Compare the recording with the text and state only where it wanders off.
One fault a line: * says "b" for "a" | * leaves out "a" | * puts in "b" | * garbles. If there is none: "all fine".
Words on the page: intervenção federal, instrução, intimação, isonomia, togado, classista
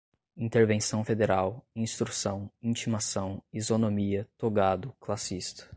all fine